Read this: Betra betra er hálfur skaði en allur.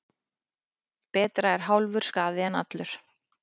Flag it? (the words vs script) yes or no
yes